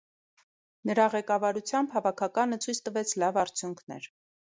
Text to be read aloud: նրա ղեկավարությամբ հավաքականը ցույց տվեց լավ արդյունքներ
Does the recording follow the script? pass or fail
pass